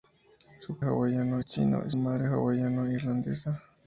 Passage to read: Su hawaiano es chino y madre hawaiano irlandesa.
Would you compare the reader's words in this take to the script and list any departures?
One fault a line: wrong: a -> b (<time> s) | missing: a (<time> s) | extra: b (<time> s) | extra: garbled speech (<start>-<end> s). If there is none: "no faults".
no faults